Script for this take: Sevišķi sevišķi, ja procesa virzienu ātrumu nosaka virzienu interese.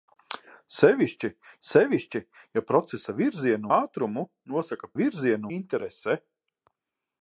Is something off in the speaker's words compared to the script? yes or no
no